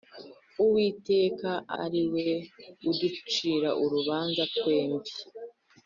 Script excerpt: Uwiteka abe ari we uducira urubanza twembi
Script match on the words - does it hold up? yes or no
no